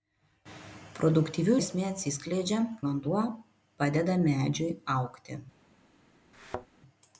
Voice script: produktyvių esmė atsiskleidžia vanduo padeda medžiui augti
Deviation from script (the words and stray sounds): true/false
true